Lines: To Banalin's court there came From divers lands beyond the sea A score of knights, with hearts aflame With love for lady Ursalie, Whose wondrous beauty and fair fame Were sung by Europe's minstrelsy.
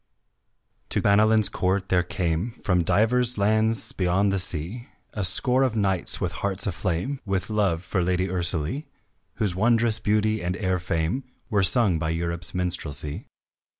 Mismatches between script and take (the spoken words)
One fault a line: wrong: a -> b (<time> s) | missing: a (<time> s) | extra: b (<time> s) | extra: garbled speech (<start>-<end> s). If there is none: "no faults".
no faults